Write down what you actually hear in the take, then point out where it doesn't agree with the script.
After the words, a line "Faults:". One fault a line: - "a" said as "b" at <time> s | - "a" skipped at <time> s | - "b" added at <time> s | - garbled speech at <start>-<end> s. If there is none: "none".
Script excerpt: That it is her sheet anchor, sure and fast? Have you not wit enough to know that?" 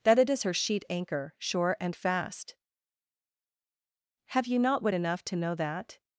That it is her sheet anchor, sure and fast? Have you not wit enough to know that?"
Faults:
none